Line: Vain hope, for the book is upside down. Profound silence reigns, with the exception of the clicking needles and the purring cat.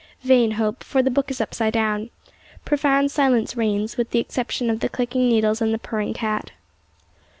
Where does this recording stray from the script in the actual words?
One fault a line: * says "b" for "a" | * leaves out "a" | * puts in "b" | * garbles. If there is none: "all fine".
all fine